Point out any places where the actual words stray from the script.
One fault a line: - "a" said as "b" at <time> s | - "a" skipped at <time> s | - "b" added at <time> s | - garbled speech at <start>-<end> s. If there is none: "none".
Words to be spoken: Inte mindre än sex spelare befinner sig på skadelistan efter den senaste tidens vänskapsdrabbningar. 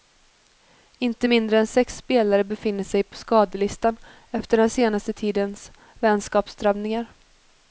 none